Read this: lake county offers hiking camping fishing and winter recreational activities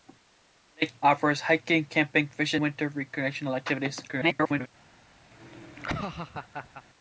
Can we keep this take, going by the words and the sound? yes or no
no